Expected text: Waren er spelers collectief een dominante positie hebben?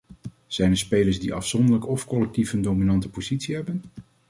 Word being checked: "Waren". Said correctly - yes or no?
no